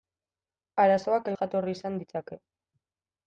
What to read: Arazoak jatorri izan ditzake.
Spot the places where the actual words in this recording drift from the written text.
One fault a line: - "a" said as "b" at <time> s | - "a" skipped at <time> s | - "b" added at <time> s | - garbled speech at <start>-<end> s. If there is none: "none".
none